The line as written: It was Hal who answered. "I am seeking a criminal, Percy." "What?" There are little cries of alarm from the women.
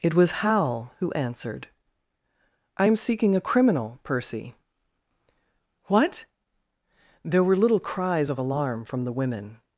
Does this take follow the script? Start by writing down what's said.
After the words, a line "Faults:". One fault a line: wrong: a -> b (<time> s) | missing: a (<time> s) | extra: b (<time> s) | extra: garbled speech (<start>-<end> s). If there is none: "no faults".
It was Hal who answered. "I am seeking a criminal, Percy." "What?" There were little cries of alarm from the women.
Faults:
wrong: are -> were (7.4 s)